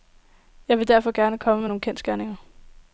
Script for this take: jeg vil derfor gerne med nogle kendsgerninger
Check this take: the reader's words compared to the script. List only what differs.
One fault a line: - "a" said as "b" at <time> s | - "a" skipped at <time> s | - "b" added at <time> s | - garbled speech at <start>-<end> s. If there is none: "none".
- "komme" added at 1.4 s